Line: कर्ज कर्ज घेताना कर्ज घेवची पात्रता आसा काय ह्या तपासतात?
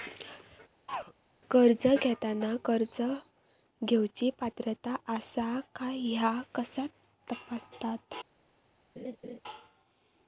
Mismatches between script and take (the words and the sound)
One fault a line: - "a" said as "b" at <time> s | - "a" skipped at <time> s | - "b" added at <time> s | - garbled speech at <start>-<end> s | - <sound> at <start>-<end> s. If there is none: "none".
- throat clearing at 0.9-1.1 s
- "कर्ज" skipped at 1.9 s
- "कसा" added at 6.5 s
- laugh at 9.0-9.4 s